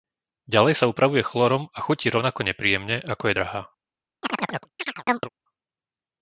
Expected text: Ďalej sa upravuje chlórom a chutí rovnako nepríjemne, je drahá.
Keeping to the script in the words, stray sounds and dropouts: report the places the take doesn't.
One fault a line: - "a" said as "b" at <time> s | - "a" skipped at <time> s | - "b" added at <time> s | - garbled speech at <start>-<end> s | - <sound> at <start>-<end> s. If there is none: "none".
- "ako" added at 3.0 s
- chirp at 4.2-5.3 s